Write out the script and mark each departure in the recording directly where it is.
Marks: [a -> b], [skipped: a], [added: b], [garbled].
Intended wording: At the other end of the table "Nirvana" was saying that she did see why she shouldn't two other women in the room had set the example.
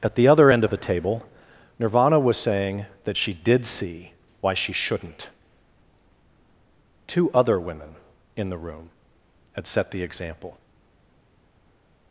At the other end of the table "Nirvana" was saying that she did see why she shouldn't two other women in the room had set the example.